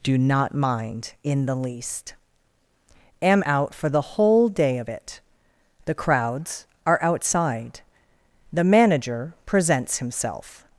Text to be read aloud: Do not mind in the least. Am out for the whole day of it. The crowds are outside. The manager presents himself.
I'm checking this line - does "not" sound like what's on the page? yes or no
yes